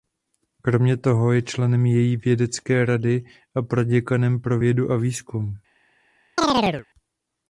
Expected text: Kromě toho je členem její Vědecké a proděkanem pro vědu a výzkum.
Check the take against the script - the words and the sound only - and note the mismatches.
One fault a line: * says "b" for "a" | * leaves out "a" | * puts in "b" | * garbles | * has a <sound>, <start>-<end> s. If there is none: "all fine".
* puts in "rady"
* has a chirp, 6.4-6.9 s